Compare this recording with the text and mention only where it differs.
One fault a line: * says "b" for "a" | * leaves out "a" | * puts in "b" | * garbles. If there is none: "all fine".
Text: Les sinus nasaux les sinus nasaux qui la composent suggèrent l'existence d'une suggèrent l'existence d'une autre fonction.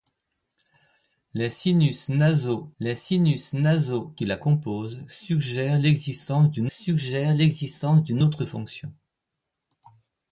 all fine